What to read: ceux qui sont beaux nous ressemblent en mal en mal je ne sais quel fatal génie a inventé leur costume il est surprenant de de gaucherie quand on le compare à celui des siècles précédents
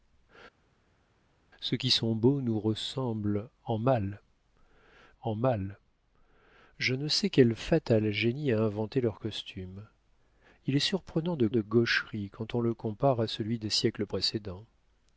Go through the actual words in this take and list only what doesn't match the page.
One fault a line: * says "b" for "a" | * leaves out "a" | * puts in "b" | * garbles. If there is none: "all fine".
all fine